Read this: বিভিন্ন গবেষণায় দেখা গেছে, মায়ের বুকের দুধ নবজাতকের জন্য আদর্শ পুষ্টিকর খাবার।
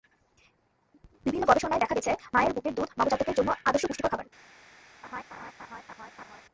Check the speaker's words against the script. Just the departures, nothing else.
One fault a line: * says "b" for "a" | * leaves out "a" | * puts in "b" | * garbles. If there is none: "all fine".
all fine